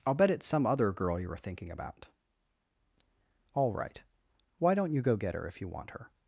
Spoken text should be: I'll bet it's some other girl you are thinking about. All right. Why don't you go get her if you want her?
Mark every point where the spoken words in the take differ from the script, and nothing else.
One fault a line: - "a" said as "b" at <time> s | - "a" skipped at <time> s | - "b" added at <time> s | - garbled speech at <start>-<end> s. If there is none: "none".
- "are" said as "were" at 1.3 s